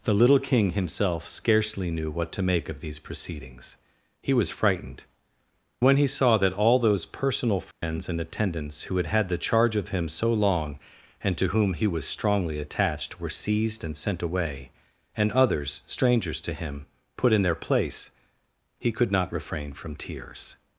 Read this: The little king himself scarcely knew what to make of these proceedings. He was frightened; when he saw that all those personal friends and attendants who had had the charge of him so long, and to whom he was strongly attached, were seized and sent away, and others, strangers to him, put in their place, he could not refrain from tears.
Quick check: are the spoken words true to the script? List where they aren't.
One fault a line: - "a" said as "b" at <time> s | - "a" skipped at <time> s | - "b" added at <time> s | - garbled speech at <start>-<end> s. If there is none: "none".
none